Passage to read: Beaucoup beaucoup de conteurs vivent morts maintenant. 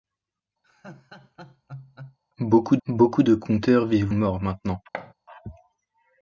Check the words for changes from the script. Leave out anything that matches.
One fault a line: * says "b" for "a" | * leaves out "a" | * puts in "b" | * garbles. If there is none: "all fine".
all fine